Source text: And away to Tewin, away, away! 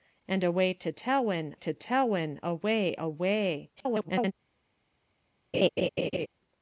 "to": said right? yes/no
yes